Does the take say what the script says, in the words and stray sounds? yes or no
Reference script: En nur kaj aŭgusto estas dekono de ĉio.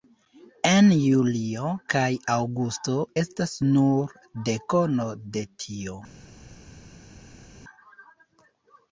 no